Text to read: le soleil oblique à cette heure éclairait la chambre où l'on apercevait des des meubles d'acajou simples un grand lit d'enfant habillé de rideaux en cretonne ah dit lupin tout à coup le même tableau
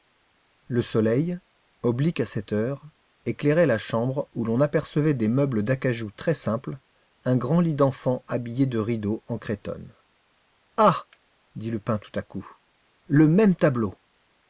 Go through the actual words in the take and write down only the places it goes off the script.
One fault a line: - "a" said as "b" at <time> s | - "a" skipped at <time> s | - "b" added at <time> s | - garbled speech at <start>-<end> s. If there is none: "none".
- "des" skipped at 5.3 s
- "très" added at 6.1 s